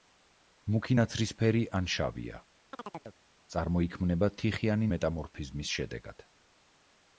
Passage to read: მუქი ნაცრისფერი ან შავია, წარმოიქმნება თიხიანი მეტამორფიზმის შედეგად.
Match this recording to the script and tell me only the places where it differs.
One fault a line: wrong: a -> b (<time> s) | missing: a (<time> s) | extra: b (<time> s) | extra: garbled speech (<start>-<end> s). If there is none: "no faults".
no faults